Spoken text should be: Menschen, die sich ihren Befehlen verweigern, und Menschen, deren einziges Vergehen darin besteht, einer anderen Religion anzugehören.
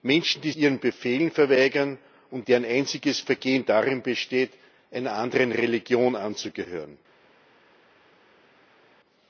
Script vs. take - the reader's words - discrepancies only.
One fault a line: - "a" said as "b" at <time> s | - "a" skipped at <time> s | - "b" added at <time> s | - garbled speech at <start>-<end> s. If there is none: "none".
- "sich" skipped at 0.5 s
- "Menschen" skipped at 2.5 s